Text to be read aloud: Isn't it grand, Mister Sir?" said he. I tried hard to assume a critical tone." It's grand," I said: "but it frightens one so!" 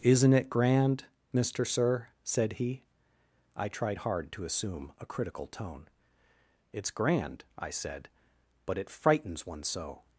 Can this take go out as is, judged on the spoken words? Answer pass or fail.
pass